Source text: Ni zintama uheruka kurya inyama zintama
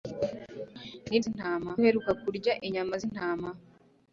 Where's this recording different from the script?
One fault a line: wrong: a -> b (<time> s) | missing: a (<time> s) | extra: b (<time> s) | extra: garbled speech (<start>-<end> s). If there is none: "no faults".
no faults